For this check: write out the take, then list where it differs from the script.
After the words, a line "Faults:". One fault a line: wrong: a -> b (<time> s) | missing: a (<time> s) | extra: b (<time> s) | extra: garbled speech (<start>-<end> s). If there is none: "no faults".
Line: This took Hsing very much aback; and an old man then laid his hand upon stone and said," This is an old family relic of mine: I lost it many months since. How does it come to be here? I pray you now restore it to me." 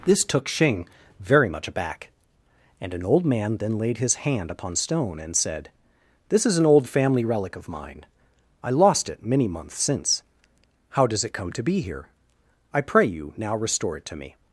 This took Hsing very much aback; and an old man then laid his hand upon stone and said," This is an old family relic of mine: I lost it many months since. How does it come to be here? I pray you now restore it to me."
Faults:
no faults